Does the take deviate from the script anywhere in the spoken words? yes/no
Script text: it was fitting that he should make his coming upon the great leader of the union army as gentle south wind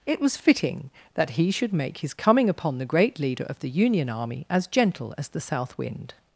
yes